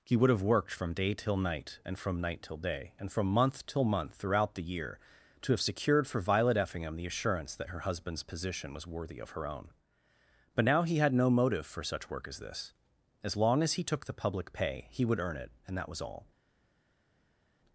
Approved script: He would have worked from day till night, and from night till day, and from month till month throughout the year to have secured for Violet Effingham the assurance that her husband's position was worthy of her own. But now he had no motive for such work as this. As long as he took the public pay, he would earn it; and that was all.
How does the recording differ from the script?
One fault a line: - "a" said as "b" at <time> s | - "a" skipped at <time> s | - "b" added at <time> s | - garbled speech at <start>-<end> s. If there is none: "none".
none